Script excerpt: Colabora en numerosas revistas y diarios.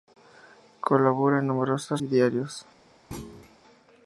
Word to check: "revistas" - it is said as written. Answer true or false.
false